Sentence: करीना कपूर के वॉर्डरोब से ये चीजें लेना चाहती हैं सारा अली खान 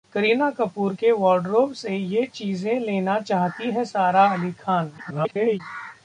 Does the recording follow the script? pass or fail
fail